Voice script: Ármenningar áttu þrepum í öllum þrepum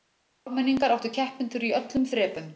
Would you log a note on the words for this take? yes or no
yes